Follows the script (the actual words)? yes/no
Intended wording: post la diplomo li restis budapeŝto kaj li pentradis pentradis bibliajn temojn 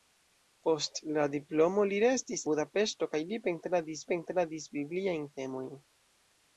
yes